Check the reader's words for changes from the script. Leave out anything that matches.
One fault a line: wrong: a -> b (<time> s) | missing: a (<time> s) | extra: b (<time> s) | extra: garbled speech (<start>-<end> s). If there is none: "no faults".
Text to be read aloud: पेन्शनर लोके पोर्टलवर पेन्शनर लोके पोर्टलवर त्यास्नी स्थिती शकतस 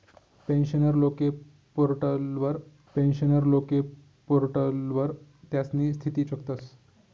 no faults